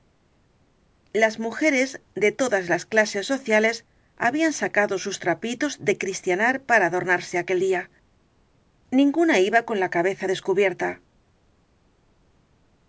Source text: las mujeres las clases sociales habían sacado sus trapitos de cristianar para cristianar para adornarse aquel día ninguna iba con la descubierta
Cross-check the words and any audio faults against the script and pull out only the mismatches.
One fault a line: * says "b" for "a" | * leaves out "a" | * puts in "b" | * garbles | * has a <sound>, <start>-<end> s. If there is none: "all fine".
* puts in "de todas"
* leaves out "cristianar para"
* puts in "cabeza"